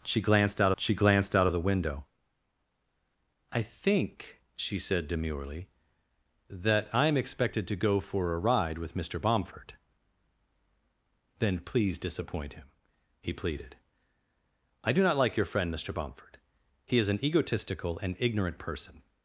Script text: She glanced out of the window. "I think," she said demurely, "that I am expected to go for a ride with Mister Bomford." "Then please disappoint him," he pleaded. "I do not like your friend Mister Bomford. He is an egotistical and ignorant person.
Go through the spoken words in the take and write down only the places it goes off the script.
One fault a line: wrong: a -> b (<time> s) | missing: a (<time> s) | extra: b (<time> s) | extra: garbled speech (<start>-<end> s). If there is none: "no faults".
extra: she glanced out (0.8 s)